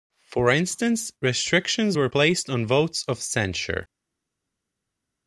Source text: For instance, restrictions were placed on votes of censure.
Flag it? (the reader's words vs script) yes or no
no